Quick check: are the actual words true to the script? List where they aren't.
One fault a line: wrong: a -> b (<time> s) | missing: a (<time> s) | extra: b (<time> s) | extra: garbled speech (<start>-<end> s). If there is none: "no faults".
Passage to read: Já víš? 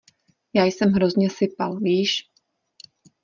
extra: jsem hrozně sypal (0.7 s)